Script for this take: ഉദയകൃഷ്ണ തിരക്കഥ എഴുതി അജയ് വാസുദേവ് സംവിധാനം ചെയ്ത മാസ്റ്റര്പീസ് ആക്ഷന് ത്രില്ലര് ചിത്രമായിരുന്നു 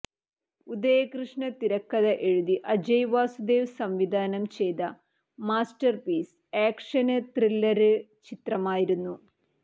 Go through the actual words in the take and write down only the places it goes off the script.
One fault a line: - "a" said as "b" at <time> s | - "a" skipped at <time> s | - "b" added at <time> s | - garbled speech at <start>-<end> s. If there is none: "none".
none